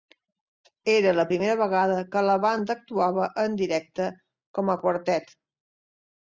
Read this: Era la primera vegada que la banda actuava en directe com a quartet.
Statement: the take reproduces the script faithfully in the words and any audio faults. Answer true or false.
true